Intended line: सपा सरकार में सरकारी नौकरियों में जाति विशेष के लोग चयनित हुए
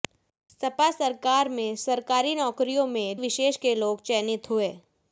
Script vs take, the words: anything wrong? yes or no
yes